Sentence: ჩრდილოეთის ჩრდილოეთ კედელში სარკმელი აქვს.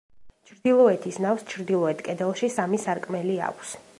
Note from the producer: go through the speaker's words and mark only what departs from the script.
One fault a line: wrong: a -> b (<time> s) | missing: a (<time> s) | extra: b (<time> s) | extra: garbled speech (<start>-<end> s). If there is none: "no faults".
extra: ნავს (1.3 s)
extra: სამი (2.5 s)